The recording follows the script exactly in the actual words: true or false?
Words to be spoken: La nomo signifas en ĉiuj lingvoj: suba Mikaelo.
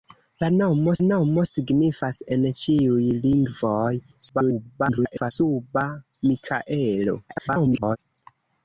false